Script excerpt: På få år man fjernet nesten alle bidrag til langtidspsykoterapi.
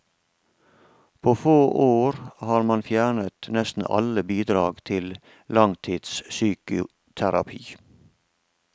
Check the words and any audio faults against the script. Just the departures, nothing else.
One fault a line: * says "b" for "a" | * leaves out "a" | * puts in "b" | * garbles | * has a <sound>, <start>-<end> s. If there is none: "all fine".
* puts in "har"